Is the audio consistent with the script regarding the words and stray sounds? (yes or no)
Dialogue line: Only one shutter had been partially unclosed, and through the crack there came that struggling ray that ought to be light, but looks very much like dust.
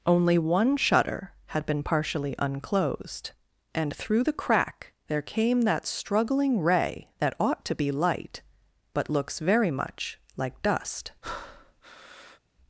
no